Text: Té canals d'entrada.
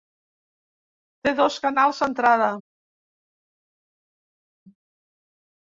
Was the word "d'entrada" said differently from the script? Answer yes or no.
no